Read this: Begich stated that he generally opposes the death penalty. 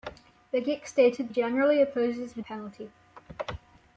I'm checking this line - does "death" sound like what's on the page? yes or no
no